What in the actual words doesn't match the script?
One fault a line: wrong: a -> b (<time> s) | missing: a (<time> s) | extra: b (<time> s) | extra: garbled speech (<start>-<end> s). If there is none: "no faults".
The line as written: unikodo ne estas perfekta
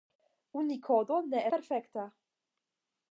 missing: estas (1.4 s)